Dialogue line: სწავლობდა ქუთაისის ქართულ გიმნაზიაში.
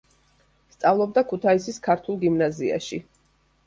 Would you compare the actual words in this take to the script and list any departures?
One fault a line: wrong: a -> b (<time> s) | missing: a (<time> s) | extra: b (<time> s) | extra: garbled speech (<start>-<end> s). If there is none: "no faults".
no faults